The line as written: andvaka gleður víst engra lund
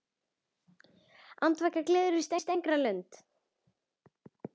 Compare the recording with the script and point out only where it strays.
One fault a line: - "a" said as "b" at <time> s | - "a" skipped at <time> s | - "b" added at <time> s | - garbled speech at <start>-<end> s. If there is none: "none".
- "víst" added at 2.3 s